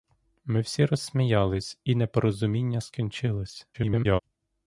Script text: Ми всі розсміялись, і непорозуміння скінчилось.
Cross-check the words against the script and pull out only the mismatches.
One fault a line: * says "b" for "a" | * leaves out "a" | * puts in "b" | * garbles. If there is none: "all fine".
* garbles